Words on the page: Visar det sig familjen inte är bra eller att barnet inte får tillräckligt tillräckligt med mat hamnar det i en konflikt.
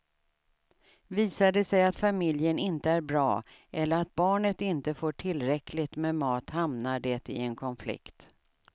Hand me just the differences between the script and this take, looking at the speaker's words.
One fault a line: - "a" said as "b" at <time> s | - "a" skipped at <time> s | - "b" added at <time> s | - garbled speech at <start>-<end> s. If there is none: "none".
- "att" added at 1.8 s
- "tillräckligt" skipped at 6.0 s